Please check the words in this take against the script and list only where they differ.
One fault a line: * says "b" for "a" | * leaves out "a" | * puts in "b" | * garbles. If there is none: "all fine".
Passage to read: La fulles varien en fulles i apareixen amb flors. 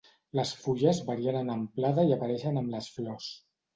* says "Les" for "La"
* says "amplada" for "fulles"
* puts in "les"